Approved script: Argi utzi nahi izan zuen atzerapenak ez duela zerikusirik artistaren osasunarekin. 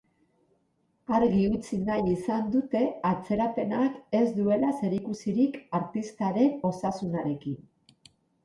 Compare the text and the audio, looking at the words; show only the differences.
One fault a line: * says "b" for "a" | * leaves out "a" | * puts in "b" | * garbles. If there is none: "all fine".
* says "dute" for "zuen"